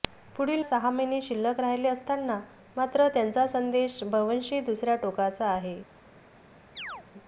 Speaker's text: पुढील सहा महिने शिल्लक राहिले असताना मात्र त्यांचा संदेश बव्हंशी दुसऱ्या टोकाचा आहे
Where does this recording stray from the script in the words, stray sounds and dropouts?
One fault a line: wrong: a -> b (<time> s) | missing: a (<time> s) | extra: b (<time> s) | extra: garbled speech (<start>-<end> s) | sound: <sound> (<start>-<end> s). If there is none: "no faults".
sound: chirp (6.8-7.1 s)